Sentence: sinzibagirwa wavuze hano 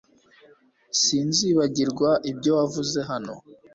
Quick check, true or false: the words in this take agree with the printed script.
false